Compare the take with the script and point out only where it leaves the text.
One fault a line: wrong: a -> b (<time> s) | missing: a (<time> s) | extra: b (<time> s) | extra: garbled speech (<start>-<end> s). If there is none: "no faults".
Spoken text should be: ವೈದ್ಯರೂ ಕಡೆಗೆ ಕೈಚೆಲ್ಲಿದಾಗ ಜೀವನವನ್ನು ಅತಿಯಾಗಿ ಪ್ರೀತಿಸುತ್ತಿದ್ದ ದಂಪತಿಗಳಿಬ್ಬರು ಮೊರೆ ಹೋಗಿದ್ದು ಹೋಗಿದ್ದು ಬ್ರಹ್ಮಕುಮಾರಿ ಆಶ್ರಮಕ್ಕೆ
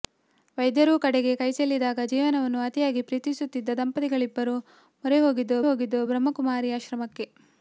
no faults